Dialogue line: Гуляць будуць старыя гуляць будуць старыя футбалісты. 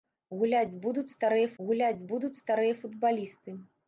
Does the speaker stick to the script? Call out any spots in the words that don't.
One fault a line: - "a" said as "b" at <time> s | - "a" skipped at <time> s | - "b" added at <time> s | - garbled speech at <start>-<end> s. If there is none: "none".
none